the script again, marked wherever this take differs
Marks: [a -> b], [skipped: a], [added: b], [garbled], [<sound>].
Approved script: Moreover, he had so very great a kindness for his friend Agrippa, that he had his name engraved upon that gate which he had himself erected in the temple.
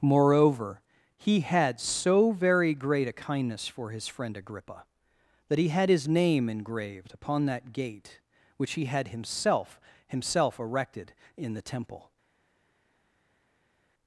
Moreover, he had so very great a kindness for his friend Agrippa, that he had his name engraved upon that gate which he had himself [added: himself] erected in the temple.